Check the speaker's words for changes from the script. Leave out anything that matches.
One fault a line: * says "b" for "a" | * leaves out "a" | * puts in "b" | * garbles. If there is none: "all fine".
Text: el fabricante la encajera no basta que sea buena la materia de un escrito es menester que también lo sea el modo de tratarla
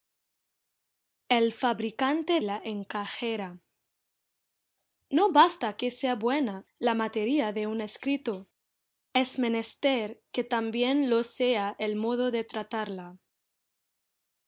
all fine